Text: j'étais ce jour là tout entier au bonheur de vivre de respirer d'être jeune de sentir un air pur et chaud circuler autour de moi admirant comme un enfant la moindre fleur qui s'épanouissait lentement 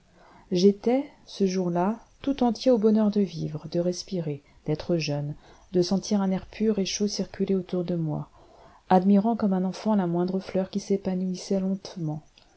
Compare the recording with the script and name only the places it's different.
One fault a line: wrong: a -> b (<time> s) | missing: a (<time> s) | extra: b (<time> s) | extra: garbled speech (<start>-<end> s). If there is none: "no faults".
no faults